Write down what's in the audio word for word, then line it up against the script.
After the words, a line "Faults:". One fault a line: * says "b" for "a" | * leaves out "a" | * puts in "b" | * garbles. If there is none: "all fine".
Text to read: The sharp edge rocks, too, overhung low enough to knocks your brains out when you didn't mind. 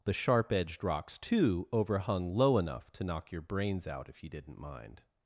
The sharp edged rocks, too, overhung low enough to knock your brains out if you didn't mind.
Faults:
* says "edged" for "edge"
* says "knock" for "knocks"
* says "if" for "when"